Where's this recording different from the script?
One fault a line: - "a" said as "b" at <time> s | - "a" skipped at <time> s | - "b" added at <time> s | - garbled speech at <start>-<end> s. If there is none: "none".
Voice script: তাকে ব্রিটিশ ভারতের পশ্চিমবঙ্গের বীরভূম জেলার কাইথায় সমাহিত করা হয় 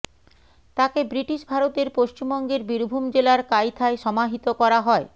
none